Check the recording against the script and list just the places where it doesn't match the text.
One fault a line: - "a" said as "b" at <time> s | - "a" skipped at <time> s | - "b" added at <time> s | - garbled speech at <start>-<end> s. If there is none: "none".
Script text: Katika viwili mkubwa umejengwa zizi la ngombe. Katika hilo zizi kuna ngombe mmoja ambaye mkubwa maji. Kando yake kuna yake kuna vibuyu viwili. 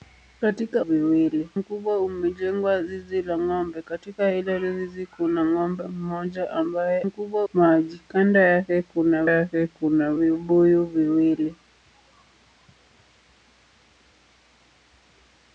none